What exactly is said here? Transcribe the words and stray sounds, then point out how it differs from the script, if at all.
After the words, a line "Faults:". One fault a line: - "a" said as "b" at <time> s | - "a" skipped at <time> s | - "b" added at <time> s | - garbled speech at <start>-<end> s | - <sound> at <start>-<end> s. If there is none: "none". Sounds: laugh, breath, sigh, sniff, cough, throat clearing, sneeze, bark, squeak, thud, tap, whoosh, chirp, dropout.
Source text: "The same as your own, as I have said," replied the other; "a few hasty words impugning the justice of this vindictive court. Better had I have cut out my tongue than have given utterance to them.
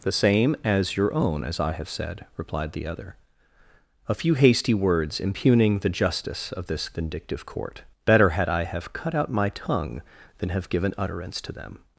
"The same as your own, as I have said," replied the other; "a few hasty words impugning the justice of this vindictive court. Better had I have cut out my tongue than have given utterance to them.
Faults:
none